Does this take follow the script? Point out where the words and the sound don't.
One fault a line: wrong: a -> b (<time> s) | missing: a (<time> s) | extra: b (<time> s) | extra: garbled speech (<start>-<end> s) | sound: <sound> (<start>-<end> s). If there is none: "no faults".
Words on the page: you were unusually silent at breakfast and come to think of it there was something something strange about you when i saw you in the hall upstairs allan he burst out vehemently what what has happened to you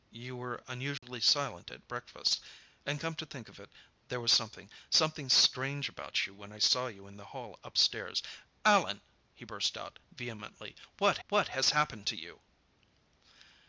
sound: dropout (1.0-1.0 s)